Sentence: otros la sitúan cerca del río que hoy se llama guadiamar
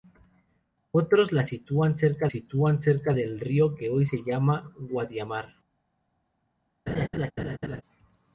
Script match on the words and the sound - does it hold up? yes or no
no